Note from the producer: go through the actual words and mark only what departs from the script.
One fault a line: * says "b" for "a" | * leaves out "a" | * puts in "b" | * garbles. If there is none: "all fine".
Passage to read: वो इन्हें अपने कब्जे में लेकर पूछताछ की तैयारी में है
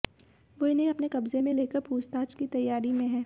all fine